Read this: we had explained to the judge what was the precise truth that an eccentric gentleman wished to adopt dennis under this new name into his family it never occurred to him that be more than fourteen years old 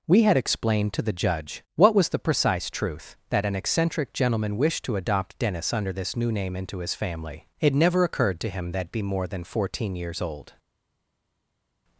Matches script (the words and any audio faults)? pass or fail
pass